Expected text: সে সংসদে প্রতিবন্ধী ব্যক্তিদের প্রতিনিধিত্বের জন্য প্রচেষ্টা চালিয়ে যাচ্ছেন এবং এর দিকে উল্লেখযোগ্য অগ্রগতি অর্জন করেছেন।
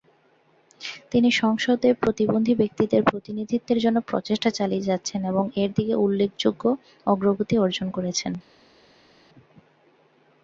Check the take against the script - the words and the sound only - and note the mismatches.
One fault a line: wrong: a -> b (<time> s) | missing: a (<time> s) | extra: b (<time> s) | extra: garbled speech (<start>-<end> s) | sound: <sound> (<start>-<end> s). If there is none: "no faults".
wrong: সে -> তিনি (1.1 s)